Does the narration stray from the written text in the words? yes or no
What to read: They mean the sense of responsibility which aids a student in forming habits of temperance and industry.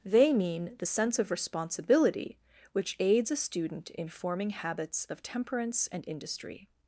no